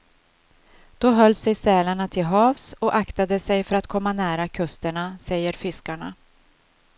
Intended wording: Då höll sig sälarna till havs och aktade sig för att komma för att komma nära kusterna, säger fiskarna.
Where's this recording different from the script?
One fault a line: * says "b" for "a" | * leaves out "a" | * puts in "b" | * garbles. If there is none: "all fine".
* leaves out "för att komma"